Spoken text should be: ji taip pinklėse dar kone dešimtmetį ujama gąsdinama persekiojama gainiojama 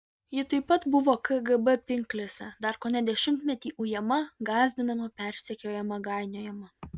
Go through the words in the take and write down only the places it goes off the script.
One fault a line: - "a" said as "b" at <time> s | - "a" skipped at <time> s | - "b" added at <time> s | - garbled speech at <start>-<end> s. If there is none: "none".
- "pat buvo kgb" added at 0.7 s